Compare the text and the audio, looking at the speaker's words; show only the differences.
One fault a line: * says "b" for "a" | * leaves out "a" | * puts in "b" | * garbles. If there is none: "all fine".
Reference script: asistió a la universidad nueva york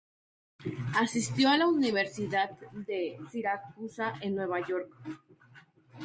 * puts in "de siracusa en"